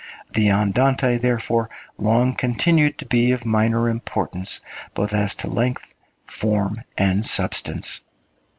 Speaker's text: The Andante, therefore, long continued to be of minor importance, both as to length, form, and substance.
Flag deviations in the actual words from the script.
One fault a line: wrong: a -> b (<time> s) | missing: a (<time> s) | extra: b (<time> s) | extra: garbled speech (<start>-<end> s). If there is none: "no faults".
no faults